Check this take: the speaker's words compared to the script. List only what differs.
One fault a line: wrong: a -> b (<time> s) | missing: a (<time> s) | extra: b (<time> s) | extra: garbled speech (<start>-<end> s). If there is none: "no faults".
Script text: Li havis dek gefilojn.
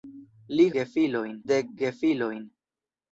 wrong: havis -> gefilojn (0.8 s)